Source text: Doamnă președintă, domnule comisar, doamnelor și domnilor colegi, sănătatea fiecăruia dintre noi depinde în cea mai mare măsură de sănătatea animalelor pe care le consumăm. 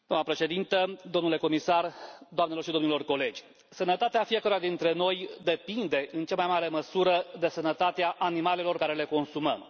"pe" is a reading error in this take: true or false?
true